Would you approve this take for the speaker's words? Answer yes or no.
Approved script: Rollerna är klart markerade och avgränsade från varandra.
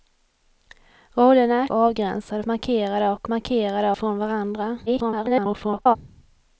no